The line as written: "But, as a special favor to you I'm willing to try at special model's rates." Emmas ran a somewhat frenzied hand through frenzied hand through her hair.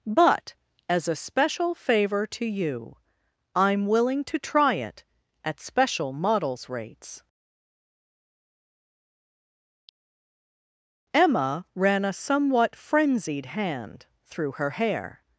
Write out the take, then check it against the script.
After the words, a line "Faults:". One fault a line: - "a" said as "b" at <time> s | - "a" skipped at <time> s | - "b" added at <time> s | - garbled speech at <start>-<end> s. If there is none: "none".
"But, as a special favor to you I'm willing to try it at special model's rates." Emma ran a somewhat frenzied hand through her hair.
Faults:
- "it" added at 4.8 s
- "Emmas" said as "Emma" at 11.1 s
- "frenzied hand through" skipped at 14.5 s